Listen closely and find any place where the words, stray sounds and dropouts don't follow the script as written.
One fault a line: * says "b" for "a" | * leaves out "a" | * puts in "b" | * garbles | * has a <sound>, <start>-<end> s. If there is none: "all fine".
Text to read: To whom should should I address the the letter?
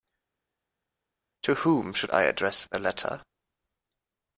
* leaves out "should"
* leaves out "the"